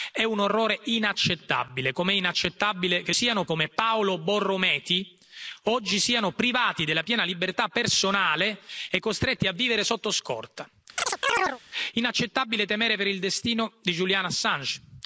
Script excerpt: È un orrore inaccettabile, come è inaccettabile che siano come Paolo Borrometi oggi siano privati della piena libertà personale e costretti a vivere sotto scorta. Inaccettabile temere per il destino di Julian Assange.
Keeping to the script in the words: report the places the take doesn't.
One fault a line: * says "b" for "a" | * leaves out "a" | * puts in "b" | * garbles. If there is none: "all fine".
all fine